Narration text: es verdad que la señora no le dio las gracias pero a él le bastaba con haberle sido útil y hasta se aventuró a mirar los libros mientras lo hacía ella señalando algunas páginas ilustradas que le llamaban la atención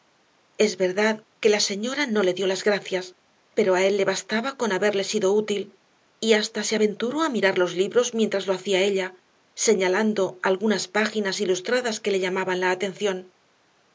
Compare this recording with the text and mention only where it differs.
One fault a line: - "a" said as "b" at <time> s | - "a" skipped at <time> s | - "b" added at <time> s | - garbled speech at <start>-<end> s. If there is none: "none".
none